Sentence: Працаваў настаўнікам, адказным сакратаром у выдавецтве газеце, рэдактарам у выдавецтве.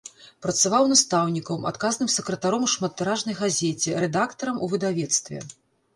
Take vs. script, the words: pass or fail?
fail